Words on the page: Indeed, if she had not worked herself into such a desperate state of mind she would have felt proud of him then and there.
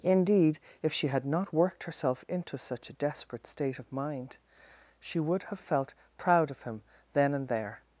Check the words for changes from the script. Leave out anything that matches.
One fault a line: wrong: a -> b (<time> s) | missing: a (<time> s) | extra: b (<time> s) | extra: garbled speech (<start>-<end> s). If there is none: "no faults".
no faults